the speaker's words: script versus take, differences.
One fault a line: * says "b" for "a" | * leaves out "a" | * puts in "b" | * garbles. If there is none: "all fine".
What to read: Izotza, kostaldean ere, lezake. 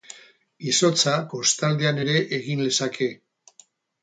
* puts in "egin"